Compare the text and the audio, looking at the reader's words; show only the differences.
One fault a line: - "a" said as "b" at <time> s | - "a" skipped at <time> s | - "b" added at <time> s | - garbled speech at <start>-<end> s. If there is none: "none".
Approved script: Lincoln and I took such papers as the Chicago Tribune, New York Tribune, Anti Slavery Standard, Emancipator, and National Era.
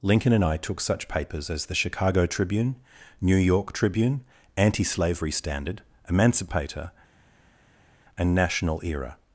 none